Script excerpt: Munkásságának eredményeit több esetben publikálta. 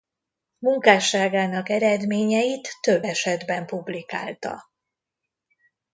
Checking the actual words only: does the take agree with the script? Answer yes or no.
yes